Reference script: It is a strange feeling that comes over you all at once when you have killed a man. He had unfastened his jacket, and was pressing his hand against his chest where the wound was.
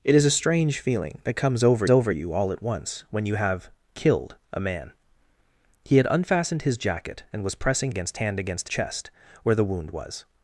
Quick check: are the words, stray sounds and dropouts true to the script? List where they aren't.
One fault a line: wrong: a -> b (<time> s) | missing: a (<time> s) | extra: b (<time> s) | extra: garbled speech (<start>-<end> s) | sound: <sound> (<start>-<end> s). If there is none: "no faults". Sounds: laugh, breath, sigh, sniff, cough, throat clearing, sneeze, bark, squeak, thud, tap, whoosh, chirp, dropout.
extra: over (1.9 s)
wrong: his -> against (7.9 s)
missing: his (8.7 s)